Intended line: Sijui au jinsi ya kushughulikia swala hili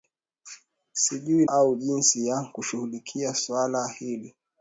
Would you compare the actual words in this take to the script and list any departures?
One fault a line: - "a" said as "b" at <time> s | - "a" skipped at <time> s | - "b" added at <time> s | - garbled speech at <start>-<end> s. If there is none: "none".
none